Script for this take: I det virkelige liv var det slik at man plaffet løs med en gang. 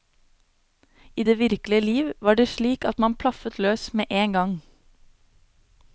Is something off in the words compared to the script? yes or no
no